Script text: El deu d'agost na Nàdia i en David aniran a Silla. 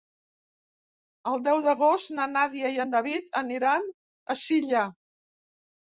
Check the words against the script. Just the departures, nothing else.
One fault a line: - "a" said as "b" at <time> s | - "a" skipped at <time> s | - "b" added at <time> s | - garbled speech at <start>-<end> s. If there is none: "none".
none